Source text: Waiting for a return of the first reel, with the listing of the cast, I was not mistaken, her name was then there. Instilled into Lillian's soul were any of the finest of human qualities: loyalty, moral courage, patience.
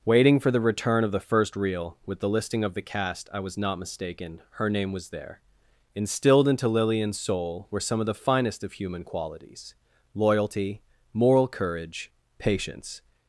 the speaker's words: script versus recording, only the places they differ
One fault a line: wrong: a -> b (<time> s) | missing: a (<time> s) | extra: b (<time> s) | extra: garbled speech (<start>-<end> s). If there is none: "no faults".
wrong: a -> the (0.5 s)
missing: then (5.1 s)
wrong: any -> some (7.8 s)